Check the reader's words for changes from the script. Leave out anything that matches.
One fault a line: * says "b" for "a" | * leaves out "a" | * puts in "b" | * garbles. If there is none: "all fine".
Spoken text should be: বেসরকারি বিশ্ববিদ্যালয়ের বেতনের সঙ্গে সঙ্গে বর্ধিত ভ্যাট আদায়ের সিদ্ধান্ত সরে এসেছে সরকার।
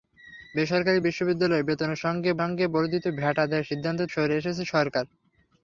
all fine